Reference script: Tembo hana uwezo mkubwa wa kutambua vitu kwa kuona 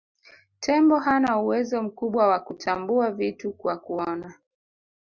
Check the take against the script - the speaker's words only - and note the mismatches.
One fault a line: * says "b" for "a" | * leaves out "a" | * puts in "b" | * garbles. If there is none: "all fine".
all fine